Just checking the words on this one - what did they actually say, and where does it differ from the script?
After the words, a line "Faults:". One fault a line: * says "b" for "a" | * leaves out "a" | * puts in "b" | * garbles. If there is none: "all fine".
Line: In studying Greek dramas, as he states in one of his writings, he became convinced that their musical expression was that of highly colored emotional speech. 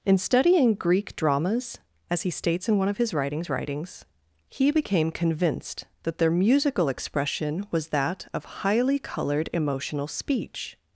In studying Greek dramas, as he states in one of his writings writings, he became convinced that their musical expression was that of highly colored emotional speech.
Faults:
* puts in "writings"